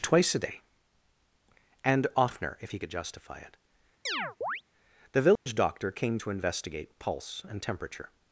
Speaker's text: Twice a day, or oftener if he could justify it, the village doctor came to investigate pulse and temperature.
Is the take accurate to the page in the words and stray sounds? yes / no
no